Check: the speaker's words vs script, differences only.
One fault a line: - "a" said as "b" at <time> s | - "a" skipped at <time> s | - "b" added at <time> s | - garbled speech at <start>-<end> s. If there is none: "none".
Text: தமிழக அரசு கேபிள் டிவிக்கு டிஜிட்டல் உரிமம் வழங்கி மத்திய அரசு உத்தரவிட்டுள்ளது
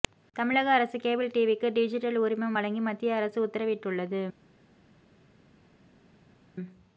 none